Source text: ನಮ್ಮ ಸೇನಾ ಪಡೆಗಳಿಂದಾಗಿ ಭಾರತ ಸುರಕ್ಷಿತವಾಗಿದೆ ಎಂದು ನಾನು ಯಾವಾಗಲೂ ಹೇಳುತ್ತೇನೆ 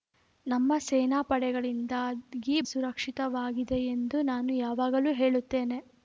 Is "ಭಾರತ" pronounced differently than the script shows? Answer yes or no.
yes